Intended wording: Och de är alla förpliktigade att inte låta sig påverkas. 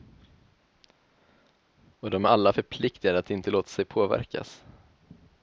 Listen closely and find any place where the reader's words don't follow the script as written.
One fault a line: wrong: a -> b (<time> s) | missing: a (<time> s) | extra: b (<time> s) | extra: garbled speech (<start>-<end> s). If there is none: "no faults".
no faults